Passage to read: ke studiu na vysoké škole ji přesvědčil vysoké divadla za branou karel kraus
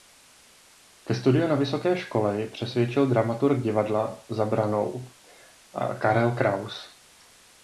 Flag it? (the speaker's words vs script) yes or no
yes